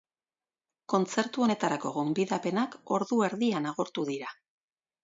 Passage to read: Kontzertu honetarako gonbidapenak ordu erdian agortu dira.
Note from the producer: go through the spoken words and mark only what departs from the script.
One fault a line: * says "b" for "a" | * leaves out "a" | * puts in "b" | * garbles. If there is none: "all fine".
all fine